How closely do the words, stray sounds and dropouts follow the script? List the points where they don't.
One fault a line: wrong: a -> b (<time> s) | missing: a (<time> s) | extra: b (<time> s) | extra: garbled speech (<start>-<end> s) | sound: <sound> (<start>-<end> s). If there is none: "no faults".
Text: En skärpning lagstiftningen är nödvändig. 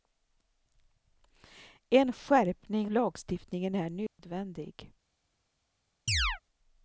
sound: dropout (4.1-4.2 s)
sound: chirp (6.1-6.4 s)